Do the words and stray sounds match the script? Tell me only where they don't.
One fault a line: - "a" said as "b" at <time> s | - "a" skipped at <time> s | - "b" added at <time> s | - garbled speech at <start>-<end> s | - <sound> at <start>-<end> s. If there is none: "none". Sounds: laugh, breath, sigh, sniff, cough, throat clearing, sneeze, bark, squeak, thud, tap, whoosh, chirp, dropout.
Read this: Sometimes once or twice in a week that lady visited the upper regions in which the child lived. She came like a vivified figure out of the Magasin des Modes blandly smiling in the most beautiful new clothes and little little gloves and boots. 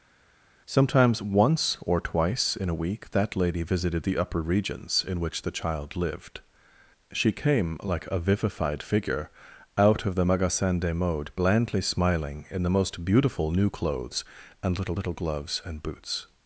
none